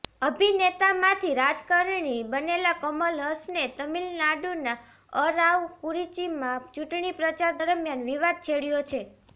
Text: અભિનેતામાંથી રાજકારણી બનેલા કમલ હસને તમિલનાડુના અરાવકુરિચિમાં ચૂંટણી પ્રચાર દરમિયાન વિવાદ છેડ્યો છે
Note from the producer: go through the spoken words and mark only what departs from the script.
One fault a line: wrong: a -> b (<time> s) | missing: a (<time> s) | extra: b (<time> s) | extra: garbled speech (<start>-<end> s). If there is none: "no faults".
no faults